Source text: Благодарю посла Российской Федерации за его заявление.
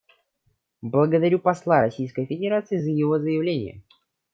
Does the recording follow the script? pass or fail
pass